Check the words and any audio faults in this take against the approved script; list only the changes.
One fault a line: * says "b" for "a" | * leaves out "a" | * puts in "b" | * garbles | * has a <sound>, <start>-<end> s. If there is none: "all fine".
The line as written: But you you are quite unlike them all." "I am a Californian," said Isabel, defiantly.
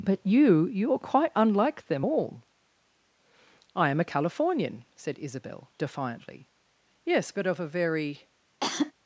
* puts in "Yes but of a very"
* has a cough, 8.6-8.9 s